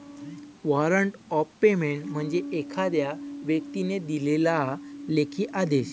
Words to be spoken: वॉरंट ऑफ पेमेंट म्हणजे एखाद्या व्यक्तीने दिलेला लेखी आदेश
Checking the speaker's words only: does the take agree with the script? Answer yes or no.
yes